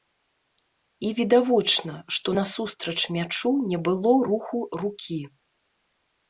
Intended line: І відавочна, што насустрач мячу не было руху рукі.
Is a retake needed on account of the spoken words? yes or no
no